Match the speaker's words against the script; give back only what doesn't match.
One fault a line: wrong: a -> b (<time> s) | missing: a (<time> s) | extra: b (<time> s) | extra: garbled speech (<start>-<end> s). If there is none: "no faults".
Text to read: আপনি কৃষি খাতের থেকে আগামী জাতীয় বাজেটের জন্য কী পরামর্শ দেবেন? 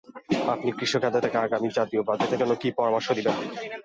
no faults